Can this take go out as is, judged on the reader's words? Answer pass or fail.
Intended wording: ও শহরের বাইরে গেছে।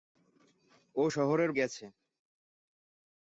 fail